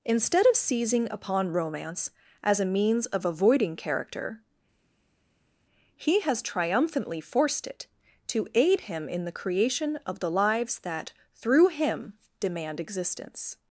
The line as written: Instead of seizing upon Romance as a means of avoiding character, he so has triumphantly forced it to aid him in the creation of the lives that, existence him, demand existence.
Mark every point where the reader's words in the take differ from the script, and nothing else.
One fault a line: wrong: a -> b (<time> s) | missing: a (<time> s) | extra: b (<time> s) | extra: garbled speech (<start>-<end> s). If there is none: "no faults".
missing: so (6.2 s)
wrong: existence -> through (11.3 s)